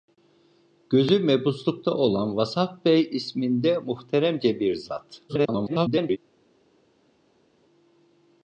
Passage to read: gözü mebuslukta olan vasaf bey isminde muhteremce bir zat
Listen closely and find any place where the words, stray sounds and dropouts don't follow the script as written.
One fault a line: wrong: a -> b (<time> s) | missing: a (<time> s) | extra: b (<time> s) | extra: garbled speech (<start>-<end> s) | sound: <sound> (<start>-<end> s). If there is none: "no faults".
extra: garbled speech (5.3-6.2 s)